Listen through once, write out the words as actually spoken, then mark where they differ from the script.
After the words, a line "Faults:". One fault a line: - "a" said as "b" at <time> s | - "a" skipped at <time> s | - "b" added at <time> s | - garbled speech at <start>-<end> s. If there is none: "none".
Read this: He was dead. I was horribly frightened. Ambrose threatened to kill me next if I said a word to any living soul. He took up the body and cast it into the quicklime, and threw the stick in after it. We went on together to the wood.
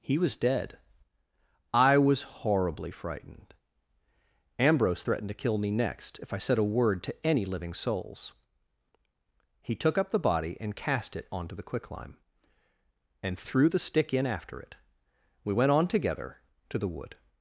He was dead. I was horribly frightened. Ambrose threatened to kill me next if I said a word to any living souls. He took up the body and cast it onto the quicklime, and threw the stick in after it. We went on together to the wood.
Faults:
- "soul" said as "souls" at 7.7 s
- "into" said as "onto" at 11.3 s